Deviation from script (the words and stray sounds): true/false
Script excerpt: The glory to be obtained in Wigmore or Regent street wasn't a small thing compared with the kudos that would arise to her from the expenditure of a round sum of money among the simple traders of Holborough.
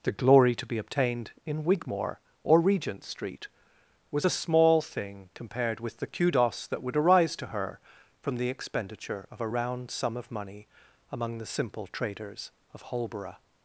true